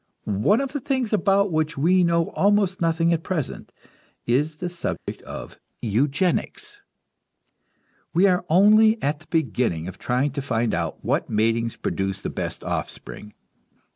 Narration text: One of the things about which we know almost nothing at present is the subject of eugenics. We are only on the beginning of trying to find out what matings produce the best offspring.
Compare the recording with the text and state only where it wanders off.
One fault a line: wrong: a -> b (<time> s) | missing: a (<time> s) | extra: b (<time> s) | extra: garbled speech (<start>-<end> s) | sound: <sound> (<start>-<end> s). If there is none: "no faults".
sound: dropout (5.0-5.1 s)
wrong: on -> at (9.0 s)